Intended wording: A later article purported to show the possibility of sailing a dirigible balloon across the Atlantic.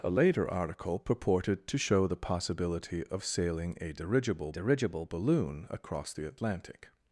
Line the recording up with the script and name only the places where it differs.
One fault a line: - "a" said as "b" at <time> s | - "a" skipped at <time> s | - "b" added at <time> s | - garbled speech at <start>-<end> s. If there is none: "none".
- "dirigible" added at 4.5 s